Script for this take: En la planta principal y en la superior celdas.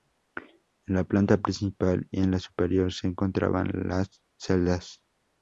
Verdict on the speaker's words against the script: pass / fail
fail